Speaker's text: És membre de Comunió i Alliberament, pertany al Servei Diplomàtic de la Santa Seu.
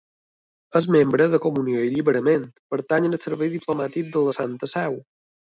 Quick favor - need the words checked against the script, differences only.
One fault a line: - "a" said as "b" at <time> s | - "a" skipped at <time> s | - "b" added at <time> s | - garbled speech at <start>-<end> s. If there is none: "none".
none